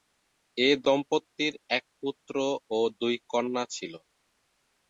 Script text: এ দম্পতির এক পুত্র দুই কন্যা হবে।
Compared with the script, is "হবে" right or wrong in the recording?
wrong